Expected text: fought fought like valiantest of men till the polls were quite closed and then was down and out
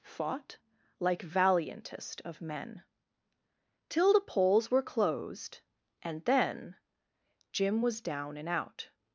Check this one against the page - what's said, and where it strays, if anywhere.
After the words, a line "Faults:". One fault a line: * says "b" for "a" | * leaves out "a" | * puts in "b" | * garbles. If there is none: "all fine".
fought like valiantest of men till the polls were closed and then jim was down and out
Faults:
* leaves out "fought"
* leaves out "quite"
* puts in "jim"